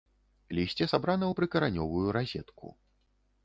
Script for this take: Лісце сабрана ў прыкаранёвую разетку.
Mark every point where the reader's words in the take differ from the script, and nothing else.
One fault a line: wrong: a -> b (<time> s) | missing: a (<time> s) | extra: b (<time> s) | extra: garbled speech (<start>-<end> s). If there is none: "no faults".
no faults